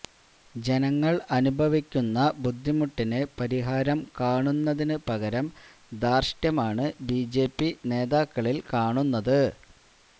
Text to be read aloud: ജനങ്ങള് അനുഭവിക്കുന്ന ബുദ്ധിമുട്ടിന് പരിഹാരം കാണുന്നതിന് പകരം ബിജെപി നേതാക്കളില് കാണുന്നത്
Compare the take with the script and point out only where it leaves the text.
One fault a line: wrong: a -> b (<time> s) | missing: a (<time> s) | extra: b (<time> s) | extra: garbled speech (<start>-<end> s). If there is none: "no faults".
extra: ധാര്ഷ്ട്യമാണ് (6.0 s)